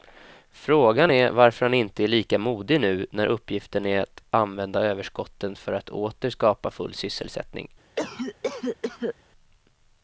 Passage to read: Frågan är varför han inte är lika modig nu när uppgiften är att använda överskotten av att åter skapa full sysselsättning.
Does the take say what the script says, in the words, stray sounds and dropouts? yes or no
no